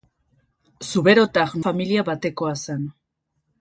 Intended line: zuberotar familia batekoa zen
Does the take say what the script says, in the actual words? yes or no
yes